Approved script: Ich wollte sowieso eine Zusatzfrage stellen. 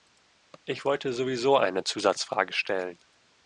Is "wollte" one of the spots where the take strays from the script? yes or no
no